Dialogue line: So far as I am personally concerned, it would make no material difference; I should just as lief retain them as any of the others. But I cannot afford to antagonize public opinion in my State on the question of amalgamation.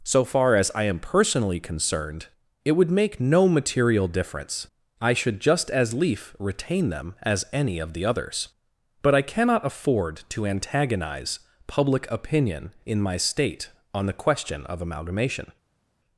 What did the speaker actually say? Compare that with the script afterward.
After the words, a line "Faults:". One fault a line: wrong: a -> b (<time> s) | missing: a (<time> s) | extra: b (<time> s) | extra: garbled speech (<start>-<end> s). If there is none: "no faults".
So far as I am personally concerned, it would make no material difference; I should just as lief retain them as any of the others. But I cannot afford to antagonize public opinion in my State on the question of amalgamation.
Faults:
no faults